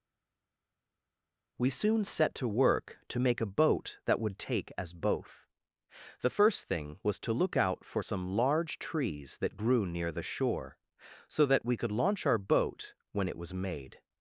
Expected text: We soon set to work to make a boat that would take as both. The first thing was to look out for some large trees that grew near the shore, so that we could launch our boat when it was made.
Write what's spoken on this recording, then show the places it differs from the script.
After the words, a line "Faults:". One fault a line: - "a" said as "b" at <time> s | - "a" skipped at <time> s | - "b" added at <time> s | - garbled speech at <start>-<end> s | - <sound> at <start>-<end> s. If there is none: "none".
We soon set to work to make a boat that would take as both. The first thing was to look out for some large trees that grew near the shore, so that we could launch our boat when it was made.
Faults:
none